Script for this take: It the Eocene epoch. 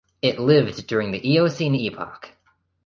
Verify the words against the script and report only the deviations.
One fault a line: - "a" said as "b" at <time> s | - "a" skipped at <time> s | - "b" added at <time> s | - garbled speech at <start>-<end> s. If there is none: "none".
- "lived during" added at 0.4 s